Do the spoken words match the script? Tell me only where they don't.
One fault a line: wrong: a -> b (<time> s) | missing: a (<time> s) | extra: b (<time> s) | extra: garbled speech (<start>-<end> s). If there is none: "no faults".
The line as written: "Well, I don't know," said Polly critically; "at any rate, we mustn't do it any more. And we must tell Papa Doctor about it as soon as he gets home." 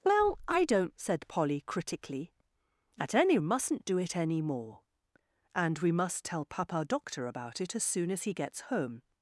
missing: know (0.9 s)
missing: rate we (3.4 s)